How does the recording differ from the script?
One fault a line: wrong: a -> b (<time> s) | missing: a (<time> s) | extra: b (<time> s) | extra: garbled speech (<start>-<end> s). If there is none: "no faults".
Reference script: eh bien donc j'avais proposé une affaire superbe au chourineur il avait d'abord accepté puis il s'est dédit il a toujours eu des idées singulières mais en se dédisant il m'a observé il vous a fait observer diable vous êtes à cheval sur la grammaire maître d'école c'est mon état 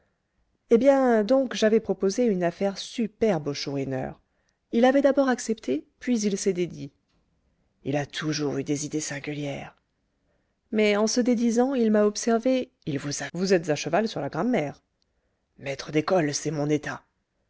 missing: fait observer diable (13.3 s)